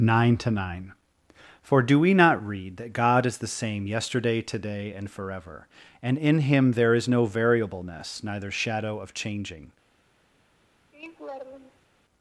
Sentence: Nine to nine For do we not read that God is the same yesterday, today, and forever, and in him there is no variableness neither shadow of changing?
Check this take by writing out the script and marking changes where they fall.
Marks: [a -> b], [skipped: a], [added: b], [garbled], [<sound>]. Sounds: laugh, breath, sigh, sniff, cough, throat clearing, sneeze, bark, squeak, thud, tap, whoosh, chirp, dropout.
Nine to nine For do we not read that God is the same yesterday, today, and forever, and in him there is no variableness neither shadow of changing? [laugh]